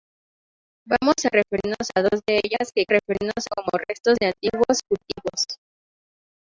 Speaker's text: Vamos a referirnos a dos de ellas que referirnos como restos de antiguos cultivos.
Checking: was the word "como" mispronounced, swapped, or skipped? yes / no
no